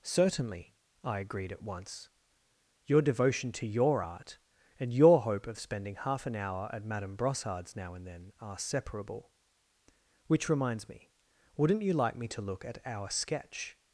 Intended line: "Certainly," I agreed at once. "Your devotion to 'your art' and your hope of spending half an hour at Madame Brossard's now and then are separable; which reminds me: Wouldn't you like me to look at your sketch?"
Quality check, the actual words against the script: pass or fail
fail